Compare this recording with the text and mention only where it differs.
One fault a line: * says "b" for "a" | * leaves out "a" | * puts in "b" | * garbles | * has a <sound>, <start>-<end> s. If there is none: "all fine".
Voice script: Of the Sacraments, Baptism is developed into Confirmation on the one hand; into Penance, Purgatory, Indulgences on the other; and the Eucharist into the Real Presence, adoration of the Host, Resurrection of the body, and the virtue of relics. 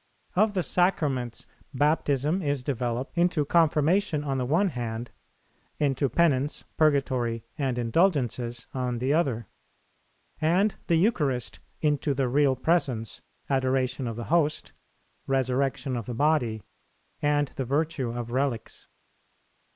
* puts in "and"